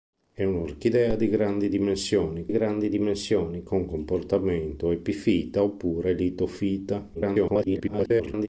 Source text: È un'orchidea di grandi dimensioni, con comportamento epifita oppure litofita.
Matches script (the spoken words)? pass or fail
fail